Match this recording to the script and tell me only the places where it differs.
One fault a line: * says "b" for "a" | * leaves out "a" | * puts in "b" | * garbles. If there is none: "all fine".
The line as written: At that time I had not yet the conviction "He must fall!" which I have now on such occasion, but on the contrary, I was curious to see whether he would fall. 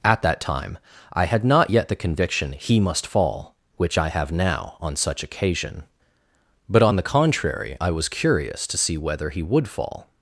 all fine